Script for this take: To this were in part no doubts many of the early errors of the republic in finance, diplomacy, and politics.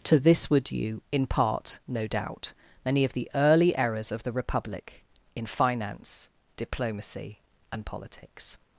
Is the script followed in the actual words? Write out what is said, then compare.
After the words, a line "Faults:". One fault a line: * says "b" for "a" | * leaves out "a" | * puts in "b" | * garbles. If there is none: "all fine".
To this were due in part no doubt many of the early errors of the republic in finance, diplomacy, and politics.
Faults:
* puts in "due"
* says "doubt" for "doubts"